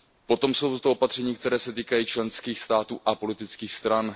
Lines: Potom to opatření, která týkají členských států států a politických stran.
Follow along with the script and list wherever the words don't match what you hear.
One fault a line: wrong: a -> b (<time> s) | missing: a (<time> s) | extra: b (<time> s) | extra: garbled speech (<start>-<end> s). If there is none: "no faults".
extra: jsou (0.5 s)
extra: se (1.6 s)
missing: států (3.0 s)